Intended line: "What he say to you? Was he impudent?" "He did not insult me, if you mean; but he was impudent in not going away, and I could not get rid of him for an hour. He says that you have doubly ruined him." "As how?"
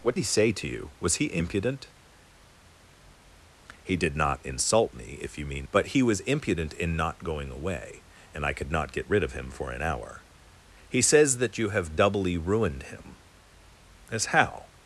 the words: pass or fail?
pass